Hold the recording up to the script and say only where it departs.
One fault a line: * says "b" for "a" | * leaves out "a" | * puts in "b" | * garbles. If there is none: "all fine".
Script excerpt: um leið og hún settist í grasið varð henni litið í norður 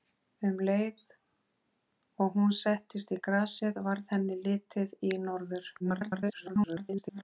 * garbles